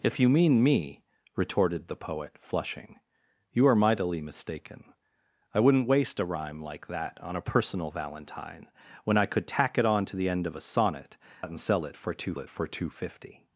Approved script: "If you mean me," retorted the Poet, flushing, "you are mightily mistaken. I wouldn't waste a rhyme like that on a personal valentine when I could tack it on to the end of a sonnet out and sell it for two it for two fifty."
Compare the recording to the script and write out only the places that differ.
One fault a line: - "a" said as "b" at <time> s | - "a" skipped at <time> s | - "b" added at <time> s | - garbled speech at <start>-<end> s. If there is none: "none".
none